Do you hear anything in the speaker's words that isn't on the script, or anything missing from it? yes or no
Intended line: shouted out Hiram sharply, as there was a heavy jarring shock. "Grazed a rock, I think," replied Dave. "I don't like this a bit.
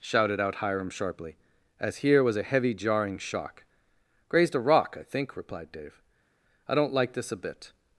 yes